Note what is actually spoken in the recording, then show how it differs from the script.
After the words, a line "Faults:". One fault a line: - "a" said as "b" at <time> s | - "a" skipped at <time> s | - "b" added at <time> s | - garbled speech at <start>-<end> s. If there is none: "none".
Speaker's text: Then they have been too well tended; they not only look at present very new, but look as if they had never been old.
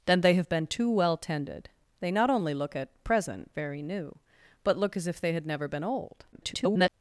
Then they have been too well tended; they not only look at present very new, but look as if they had never been old. [garbled]
Faults:
- garbled speech at 6.3-6.9 s